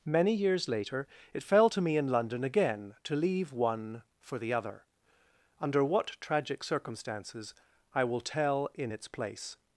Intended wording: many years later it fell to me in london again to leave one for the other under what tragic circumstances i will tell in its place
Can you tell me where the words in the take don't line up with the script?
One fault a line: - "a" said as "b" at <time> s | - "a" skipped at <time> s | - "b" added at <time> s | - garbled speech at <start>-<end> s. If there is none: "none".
none